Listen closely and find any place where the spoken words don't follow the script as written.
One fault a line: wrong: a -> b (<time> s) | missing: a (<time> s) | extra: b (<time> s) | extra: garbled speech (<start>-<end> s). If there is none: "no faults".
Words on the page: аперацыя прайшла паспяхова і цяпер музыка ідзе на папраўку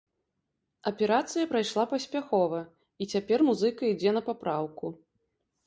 no faults